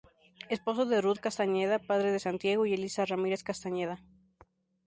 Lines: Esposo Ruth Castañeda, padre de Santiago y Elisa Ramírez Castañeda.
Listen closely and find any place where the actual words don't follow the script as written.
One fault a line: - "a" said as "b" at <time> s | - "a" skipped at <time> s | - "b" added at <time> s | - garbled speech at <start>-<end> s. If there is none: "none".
- "de" added at 0.9 s